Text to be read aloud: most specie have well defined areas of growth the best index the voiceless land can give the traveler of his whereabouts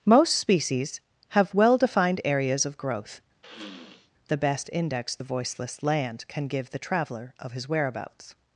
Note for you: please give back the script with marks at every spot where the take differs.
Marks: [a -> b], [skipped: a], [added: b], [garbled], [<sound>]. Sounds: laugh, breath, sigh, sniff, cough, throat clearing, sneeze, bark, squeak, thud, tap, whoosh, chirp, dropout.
most [specie -> species] have well defined areas of growth [sniff] the best index the voiceless land can give the traveler of his whereabouts